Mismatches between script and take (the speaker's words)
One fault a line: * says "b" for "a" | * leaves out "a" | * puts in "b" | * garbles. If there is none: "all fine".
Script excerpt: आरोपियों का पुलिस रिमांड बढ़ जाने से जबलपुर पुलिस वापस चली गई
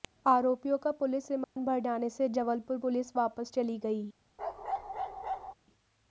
all fine